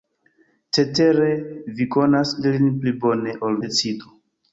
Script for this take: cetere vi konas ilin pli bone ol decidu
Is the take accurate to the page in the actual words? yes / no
yes